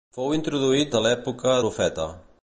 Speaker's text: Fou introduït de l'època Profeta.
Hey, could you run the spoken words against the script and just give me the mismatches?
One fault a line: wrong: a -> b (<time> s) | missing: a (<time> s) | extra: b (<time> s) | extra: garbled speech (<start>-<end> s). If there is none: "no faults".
no faults